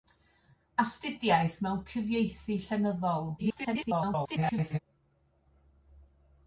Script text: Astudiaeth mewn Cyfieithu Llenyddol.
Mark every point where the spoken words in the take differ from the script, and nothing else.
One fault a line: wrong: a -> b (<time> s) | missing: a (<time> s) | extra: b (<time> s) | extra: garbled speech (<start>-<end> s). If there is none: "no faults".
extra: garbled speech (3.4-4.8 s)